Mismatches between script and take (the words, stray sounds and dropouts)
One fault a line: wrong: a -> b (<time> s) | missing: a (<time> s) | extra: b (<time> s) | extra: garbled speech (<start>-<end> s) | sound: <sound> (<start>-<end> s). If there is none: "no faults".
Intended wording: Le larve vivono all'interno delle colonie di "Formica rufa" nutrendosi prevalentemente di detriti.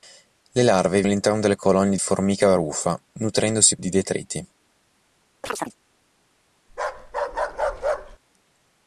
missing: vivono (1.0 s)
missing: di (2.0 s)
missing: prevalentemente (3.8 s)
sound: chirp (5.4-5.8 s)
sound: bark (6.7-8.2 s)